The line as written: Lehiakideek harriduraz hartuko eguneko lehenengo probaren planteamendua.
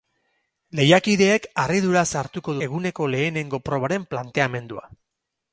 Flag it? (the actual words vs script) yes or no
no